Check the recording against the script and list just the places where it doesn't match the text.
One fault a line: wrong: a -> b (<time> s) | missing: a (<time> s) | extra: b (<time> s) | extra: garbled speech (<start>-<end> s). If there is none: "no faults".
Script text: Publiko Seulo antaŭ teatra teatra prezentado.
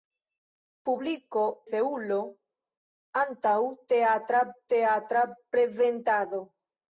no faults